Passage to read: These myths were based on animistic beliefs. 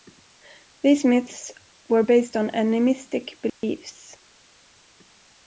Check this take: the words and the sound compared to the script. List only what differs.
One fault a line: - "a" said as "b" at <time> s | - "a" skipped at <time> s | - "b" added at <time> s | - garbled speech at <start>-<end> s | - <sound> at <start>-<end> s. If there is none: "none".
- dropout at 3.5-3.6 s